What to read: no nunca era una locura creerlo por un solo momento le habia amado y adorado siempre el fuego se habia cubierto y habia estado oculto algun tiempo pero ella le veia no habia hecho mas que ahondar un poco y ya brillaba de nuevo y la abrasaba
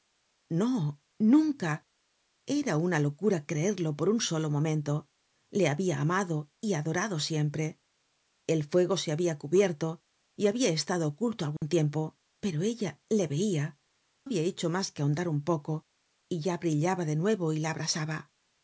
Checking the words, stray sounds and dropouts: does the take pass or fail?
fail